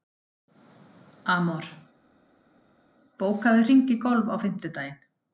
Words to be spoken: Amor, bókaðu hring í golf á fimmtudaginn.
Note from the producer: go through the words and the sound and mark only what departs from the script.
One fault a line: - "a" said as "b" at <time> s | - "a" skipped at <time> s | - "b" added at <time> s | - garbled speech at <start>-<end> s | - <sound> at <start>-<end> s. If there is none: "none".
none